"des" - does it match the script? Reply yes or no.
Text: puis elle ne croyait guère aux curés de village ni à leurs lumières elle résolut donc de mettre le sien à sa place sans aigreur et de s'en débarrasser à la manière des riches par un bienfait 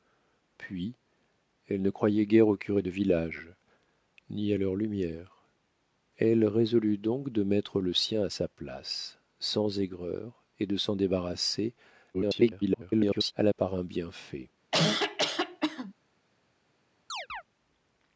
no